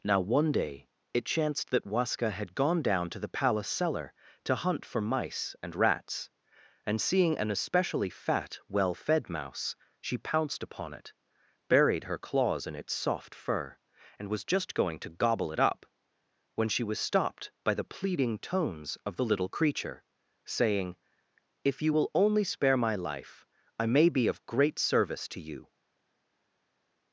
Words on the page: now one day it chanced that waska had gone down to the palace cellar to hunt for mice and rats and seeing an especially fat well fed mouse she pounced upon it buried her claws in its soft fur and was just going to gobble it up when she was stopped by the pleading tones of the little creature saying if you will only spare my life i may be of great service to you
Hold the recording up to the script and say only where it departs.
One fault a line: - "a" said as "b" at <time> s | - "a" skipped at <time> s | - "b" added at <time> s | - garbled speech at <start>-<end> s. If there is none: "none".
none